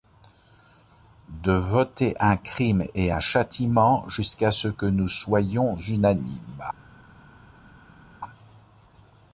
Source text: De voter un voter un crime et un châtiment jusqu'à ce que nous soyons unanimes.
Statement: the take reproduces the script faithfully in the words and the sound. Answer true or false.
false